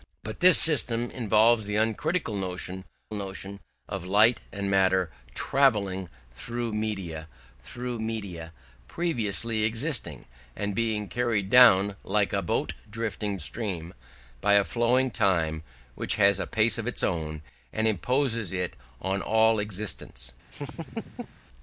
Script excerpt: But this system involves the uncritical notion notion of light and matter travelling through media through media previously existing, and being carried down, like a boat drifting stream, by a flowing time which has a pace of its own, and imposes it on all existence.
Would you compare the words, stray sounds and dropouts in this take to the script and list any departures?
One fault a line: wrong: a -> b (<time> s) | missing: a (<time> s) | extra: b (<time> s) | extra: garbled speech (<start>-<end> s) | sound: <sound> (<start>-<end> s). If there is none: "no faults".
sound: laugh (20.5-21.4 s)